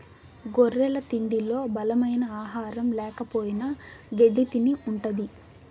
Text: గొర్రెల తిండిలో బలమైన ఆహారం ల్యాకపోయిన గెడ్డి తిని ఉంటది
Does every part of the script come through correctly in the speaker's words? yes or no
yes